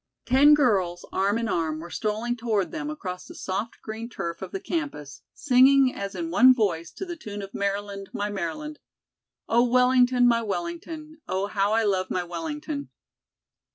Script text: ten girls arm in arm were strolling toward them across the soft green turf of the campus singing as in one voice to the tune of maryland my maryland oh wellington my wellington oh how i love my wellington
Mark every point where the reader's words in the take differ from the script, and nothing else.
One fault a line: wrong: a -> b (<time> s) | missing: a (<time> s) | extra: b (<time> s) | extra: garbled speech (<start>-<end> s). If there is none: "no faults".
no faults